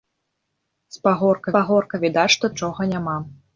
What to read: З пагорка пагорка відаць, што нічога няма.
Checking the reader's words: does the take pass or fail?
pass